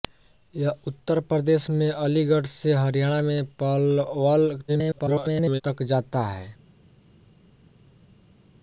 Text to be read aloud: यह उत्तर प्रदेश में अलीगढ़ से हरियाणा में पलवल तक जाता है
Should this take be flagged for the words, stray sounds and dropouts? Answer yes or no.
yes